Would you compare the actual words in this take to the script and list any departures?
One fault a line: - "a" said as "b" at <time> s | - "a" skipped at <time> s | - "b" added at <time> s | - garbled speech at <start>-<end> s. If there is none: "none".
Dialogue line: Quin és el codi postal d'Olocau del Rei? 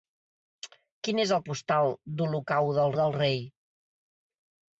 - "codi" skipped at 1.4 s
- "del" added at 3.0 s